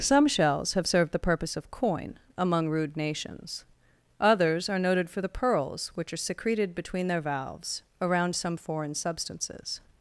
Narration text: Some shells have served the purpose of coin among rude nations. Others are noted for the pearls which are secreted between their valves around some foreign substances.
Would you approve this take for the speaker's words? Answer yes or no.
yes